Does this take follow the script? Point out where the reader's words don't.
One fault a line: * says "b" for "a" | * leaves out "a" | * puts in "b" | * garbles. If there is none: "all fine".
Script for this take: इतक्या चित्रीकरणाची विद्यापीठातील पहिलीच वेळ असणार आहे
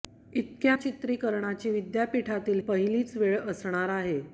all fine